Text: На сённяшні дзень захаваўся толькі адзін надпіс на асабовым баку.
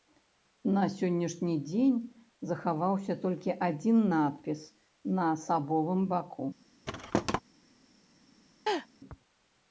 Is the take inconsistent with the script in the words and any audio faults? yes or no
yes